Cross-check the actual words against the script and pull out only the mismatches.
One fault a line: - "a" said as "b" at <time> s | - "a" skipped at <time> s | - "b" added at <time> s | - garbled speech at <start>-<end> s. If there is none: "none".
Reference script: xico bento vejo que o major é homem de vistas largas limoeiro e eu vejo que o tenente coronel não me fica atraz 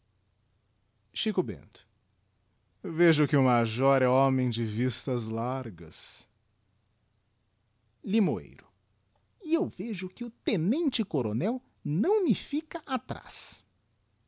none